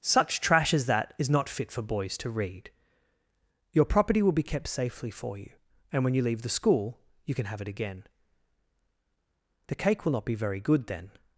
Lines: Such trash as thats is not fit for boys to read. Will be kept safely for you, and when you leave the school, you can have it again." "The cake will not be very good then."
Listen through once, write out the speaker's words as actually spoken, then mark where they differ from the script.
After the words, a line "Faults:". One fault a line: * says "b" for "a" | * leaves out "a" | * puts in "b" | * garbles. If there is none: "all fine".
Such trash as that is not fit for boys to read. Your property will be kept safely for you, and when you leave the school, you can have it again." "The cake will not be very good then."
Faults:
* says "that" for "thats"
* puts in "Your property"